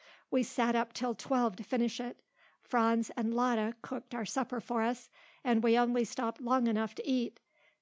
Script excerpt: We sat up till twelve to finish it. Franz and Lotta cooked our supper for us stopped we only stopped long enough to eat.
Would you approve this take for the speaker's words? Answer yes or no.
no